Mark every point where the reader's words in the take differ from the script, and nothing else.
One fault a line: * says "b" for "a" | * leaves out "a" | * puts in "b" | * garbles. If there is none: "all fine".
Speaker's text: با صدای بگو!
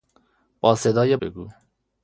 all fine